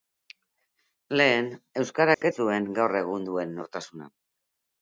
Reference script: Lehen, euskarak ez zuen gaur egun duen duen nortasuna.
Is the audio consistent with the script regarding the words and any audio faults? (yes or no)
no